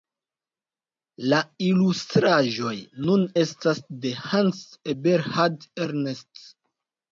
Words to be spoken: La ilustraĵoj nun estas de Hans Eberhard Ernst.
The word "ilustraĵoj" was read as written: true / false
true